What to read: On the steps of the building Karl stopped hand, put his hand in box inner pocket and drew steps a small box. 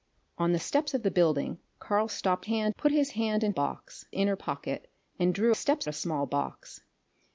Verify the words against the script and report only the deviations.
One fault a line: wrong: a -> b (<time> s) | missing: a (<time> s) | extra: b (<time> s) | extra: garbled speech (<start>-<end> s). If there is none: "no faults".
no faults